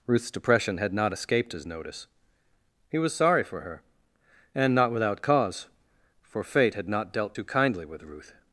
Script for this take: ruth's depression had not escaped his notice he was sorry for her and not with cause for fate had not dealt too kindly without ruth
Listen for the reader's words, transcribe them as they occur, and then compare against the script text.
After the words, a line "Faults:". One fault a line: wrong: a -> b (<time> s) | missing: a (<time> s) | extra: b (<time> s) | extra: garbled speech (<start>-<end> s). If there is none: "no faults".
ruth's depression had not escaped his notice he was sorry for her and not without cause for fate had not dealt too kindly with ruth
Faults:
wrong: with -> without (4.9 s)
wrong: without -> with (7.8 s)